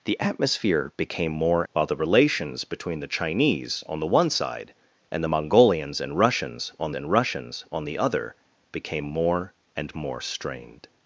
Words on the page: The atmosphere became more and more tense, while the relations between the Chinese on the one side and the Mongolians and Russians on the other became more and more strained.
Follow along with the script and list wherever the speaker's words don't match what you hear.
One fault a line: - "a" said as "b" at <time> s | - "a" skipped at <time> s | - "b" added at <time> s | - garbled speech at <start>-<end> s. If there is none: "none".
- "and more tense" skipped at 1.6 s
- "and Russians on" added at 6.9 s